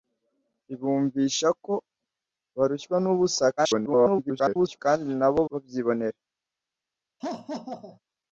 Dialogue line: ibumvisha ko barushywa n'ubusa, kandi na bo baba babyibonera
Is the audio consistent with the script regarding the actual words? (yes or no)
no